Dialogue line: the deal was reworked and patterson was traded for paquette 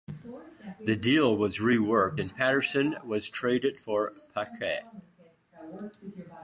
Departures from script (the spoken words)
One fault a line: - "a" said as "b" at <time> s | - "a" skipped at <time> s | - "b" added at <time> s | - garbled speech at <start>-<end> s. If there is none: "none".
none